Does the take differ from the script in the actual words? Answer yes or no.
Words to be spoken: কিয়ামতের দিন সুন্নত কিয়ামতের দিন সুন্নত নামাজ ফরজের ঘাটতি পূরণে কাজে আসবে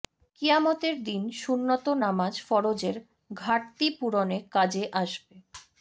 yes